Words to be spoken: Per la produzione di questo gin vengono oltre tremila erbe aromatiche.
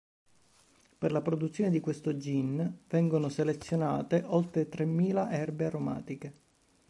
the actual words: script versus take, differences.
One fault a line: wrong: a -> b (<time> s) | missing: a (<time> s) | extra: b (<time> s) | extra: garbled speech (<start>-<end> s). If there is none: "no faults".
extra: selezionate (3.3 s)